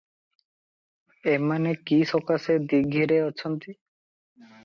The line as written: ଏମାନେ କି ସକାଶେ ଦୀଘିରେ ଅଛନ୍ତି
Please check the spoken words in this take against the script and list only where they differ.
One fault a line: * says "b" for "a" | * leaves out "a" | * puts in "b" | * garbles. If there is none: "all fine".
all fine